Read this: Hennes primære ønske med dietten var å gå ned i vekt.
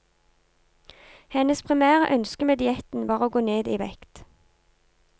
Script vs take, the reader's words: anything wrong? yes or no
no